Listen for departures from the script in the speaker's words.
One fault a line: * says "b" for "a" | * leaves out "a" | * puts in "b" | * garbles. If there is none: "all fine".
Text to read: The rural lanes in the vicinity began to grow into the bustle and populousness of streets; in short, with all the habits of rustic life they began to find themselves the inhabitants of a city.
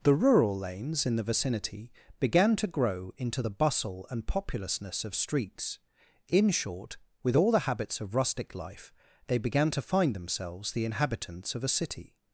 all fine